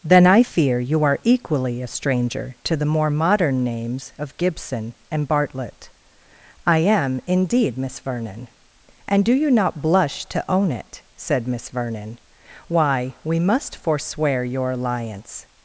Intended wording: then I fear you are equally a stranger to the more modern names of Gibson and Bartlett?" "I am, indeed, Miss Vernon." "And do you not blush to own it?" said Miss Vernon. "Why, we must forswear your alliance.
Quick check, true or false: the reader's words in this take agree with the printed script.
true